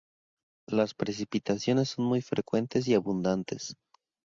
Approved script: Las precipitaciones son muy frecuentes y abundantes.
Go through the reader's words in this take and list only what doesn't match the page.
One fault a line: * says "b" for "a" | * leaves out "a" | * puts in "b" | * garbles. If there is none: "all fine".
all fine